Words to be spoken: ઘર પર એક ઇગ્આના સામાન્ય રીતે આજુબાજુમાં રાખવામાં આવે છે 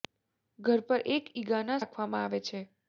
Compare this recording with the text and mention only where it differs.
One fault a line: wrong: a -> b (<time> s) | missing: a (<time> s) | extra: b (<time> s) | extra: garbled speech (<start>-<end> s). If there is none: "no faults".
missing: સામાન્ય રીતે આજુબાજુમાં (1.8 s)